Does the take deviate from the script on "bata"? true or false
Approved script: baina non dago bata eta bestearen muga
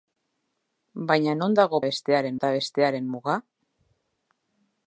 true